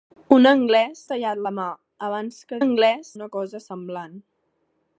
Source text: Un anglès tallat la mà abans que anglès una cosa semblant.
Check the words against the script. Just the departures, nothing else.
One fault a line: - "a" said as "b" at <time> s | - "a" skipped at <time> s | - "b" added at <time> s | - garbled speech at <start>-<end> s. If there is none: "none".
none